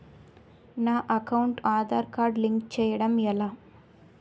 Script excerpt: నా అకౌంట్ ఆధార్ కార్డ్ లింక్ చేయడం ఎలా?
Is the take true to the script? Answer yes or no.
yes